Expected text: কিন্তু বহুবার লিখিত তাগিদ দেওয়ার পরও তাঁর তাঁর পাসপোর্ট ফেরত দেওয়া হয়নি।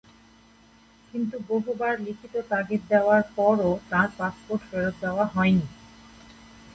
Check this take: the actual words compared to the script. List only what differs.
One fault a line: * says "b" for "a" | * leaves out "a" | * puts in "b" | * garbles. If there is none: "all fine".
* leaves out "তাঁর"